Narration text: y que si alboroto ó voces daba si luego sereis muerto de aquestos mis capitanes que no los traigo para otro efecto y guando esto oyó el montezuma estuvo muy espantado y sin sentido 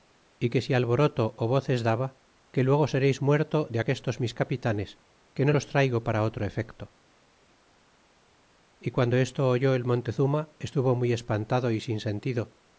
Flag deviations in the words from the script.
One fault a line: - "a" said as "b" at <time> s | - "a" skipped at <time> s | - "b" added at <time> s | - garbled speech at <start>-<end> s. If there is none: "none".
- "si" said as "que" at 2.5 s